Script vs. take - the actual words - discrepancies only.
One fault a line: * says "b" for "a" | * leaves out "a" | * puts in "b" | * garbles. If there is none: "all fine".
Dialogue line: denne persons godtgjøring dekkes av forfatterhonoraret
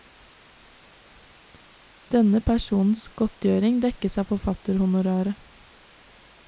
all fine